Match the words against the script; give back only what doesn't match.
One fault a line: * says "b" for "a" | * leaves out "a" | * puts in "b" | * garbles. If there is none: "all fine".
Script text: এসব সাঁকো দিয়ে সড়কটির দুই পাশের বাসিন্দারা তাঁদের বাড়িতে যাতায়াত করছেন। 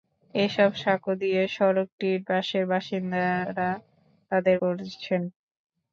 * leaves out "দুই"
* leaves out "বাড়িতে যাতায়াত"